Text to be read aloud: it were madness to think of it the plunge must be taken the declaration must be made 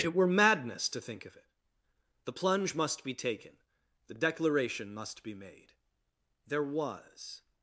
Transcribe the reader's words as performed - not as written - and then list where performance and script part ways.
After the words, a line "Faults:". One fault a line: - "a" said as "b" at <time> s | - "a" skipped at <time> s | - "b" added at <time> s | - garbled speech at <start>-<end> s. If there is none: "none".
it were madness to think of it the plunge must be taken the declaration must be made there was
Faults:
- "there was" added at 6.5 s